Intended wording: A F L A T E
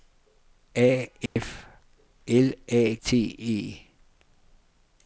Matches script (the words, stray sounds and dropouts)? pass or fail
fail